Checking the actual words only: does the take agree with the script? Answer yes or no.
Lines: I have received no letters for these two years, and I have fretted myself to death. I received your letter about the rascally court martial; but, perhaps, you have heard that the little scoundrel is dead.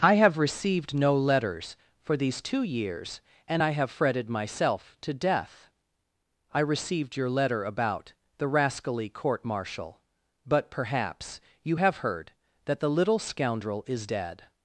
yes